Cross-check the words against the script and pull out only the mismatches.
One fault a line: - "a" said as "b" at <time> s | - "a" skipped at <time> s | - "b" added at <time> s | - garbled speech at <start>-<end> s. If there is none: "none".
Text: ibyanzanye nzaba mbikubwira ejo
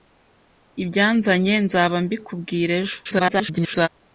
- garbled speech at 3.0-3.9 s